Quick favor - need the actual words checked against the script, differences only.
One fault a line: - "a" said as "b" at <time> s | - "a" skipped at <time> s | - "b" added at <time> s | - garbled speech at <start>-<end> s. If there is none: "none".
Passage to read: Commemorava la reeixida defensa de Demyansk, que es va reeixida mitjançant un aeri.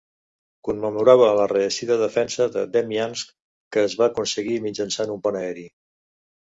- "reeixida" said as "aconseguir" at 4.1 s
- "pont" added at 5.3 s